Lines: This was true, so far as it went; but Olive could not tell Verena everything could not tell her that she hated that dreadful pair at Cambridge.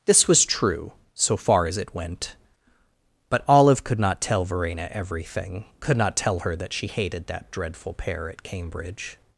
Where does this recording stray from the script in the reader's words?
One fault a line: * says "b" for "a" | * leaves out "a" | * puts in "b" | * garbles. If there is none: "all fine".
all fine